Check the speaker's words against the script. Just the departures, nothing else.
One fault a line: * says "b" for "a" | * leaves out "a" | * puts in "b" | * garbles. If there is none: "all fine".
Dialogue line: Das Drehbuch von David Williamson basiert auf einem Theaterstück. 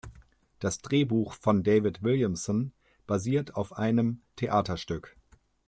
all fine